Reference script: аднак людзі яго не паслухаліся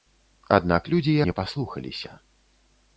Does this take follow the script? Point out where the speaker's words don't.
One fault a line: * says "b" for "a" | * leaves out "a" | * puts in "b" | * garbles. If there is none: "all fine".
* leaves out "яго"